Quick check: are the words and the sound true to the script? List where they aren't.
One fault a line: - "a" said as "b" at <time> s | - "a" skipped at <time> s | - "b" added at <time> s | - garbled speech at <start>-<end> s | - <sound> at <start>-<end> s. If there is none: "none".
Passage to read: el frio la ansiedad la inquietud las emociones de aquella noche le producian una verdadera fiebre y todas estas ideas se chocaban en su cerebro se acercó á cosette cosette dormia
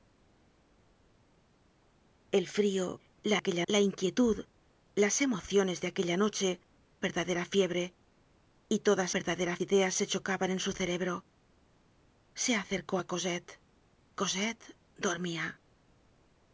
- "ansiedad" said as "aquella" at 3.4 s
- "le producian una" skipped at 6.6 s
- "estas" said as "verdadera" at 9.1 s